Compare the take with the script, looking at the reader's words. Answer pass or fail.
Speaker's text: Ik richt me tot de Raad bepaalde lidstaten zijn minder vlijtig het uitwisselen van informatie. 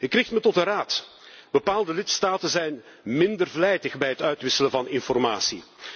fail